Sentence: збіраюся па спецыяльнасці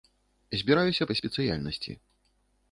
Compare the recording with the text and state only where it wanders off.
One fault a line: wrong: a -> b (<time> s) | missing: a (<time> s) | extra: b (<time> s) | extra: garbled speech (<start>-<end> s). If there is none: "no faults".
no faults